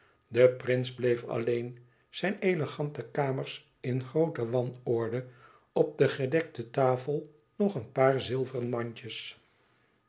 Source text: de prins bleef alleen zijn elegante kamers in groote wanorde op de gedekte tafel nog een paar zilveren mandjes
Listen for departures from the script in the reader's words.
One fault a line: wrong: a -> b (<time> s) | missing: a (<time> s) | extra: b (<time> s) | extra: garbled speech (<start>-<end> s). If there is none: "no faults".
no faults